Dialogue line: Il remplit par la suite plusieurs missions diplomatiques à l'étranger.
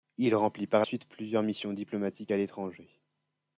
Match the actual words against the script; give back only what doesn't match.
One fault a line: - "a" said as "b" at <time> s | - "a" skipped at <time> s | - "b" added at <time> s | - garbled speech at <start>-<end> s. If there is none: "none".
- "la" skipped at 0.8 s